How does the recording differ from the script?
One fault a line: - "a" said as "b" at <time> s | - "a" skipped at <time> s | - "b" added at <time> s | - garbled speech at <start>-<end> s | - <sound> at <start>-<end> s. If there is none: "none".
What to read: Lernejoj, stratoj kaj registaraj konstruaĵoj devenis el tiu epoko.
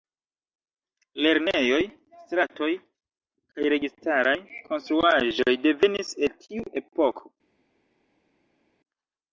none